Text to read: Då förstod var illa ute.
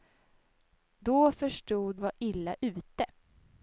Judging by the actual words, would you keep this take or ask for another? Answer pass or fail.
pass